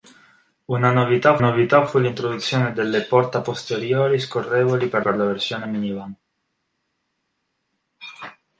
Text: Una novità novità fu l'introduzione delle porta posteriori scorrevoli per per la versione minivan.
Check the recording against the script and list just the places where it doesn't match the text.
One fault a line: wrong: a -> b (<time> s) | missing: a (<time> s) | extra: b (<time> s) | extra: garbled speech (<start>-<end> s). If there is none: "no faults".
no faults